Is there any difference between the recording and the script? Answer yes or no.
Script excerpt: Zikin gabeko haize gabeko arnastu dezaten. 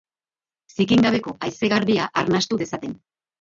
yes